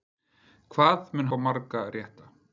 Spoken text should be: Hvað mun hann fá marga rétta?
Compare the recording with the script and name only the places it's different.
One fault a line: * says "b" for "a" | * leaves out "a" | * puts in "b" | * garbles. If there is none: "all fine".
* leaves out "hann"